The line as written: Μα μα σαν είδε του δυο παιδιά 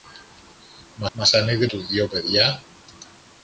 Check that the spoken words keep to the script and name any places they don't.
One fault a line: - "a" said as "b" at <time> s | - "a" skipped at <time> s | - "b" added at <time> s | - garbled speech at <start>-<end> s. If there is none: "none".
none